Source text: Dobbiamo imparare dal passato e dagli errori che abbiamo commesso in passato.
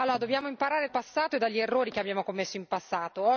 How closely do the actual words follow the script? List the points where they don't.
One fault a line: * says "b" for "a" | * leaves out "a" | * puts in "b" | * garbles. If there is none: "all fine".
* leaves out "dal"